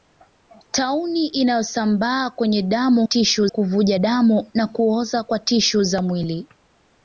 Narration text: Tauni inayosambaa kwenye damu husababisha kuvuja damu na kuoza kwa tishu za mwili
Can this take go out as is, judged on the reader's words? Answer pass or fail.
fail